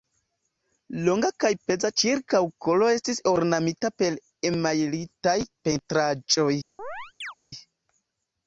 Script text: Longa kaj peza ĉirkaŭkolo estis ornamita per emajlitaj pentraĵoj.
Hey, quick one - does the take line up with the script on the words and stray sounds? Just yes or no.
no